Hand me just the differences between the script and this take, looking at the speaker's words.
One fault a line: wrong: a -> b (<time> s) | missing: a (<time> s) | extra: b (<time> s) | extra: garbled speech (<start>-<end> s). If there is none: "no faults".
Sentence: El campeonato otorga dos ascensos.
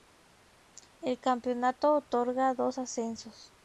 no faults